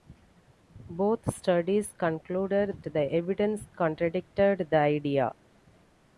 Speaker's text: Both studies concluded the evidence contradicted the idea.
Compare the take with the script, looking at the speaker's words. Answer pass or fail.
pass